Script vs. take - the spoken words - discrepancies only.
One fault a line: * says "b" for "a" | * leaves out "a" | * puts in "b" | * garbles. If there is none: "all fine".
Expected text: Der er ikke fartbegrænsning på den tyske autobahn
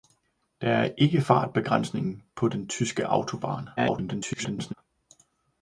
* garbles